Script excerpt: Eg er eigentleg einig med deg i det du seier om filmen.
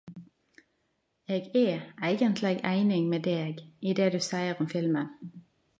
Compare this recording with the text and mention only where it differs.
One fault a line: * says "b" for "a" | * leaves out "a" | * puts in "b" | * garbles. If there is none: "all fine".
all fine